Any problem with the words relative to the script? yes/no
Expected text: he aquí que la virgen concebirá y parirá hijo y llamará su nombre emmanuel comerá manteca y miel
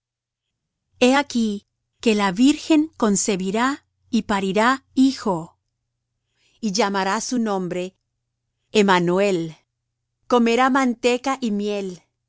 no